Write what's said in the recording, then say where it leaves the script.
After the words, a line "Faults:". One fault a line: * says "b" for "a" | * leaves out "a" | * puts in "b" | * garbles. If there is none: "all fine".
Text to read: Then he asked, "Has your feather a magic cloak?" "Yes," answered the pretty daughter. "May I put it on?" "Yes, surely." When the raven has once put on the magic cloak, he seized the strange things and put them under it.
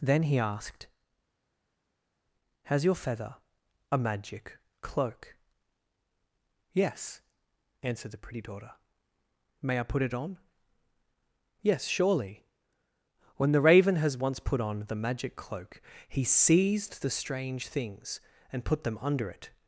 Then he asked, "Has your feather a magic cloak?" "Yes," answered the pretty daughter. "May I put it on?" "Yes, surely." When the raven has once put on the magic cloak, he seized the strange things and put them under it.
Faults:
all fine